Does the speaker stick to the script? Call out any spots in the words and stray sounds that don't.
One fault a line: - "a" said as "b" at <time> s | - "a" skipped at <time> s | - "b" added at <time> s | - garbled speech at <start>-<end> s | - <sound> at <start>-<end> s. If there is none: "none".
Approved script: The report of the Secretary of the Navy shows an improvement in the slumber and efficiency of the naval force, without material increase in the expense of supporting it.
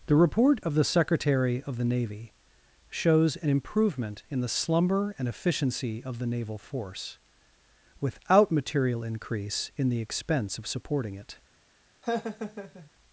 - laugh at 12.0-12.9 s